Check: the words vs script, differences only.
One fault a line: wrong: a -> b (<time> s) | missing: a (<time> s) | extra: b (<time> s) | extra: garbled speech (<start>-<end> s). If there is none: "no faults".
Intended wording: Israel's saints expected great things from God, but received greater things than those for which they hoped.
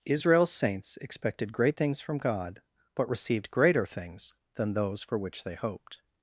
no faults